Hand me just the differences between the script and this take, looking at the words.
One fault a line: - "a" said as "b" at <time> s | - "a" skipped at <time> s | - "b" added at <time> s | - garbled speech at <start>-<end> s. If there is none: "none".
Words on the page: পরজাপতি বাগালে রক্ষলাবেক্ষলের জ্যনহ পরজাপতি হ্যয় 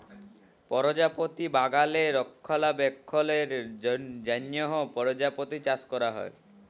- "চাষ ক্যরা" added at 5.6 s